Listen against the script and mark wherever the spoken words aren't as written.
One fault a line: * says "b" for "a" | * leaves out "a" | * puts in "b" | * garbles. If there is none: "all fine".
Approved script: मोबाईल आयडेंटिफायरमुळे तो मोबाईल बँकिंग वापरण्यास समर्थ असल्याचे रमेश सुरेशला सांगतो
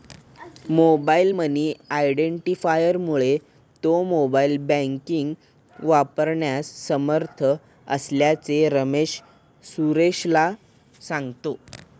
* puts in "मनी"